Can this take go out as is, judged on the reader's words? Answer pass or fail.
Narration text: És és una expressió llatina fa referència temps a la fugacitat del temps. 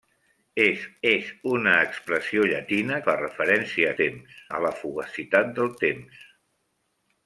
pass